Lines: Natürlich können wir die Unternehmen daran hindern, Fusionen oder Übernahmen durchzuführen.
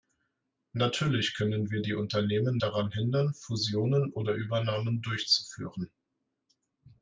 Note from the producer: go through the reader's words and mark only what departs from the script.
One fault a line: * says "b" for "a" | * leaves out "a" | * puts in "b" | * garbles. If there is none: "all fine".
all fine